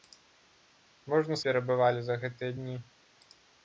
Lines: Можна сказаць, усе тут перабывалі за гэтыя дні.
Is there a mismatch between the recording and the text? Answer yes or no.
yes